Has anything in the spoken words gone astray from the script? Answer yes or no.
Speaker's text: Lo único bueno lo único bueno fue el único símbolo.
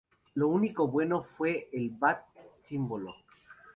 yes